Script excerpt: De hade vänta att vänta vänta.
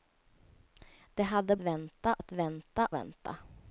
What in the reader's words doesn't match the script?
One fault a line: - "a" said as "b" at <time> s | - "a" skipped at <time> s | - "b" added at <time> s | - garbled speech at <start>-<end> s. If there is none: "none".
none